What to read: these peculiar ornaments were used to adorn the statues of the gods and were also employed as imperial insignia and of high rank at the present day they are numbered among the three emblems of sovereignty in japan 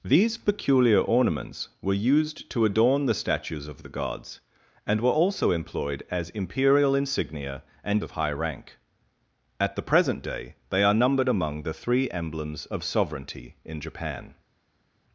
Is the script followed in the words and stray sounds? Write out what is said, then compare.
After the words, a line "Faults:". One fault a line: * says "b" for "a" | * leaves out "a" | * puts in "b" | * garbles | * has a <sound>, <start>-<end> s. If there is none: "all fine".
these peculiar ornaments were used to adorn the statues of the gods and were also employed as imperial insignia and of high rank at the present day they are numbered among the three emblems of sovereignty in japan
Faults:
all fine